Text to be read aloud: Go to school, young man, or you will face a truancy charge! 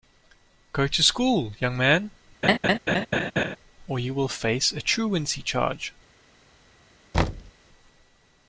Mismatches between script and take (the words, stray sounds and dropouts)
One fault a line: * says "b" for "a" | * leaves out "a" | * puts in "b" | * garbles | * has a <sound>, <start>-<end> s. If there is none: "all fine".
* has a laugh, 2.4-3.6 s
* has a thud, 7.1-7.5 s